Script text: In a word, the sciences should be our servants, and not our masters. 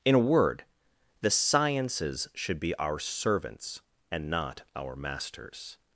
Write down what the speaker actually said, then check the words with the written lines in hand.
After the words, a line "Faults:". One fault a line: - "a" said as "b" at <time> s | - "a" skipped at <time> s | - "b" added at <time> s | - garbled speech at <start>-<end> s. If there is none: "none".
In a word, the sciences should be our servants, and not our masters.
Faults:
none